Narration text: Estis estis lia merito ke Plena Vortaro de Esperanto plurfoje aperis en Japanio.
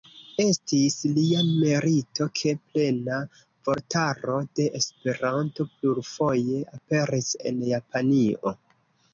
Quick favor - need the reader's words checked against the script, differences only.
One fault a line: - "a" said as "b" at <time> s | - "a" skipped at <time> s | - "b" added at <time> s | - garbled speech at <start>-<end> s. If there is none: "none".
- "estis" skipped at 0.9 s